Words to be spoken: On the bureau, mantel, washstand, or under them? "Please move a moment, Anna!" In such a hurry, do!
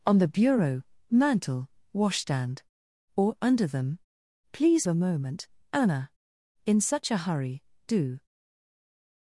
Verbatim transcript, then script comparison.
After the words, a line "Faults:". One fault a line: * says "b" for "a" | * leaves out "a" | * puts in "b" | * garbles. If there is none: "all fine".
On the bureau, mantel, washstand, or under them? "Please a moment, Anna!" In such a hurry, do!
Faults:
* leaves out "move"